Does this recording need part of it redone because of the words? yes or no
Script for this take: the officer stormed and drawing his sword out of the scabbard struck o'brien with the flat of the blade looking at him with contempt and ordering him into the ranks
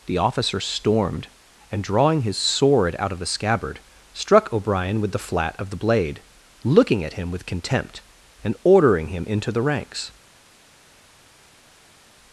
no